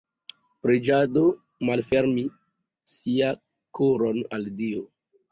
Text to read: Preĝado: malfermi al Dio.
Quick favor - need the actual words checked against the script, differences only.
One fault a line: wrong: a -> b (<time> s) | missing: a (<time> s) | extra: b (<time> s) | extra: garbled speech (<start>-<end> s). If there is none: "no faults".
extra: sia koron (3.0 s)